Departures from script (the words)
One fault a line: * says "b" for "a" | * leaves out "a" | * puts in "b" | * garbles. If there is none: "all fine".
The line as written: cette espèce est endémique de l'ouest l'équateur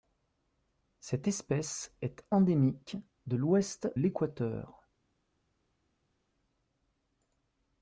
all fine